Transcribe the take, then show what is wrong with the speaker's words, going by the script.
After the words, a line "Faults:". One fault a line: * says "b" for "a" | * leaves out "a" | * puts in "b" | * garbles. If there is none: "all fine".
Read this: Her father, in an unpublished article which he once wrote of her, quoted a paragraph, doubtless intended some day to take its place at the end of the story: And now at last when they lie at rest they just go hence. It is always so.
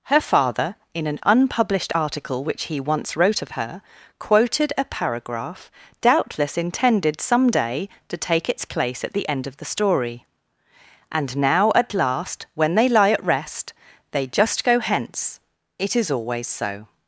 Her father, in an unpublished article which he once wrote of her, quoted a paragraph, doubtless intended some day to take its place at the end of the story: And now at last when they lie at rest they just go hence. It is always so.
Faults:
all fine